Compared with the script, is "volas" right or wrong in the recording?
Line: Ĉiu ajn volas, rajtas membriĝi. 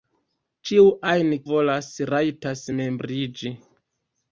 right